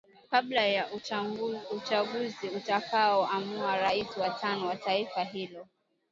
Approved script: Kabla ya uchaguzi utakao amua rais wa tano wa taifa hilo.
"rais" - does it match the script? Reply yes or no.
yes